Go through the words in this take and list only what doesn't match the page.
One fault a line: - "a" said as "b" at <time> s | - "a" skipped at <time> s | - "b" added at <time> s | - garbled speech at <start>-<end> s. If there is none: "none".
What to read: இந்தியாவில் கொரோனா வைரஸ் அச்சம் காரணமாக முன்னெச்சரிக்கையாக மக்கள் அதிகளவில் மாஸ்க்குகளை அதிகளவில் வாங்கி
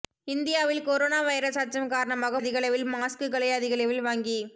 - "முன்னெச்சரிக்கையாக மக்கள்" skipped at 2.4 s